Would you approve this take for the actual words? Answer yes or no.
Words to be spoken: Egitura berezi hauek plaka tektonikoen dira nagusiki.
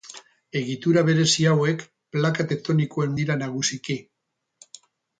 yes